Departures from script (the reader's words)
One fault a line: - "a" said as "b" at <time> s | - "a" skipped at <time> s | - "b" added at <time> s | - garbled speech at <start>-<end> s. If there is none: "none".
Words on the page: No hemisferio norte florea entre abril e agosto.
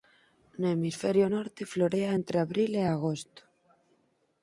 none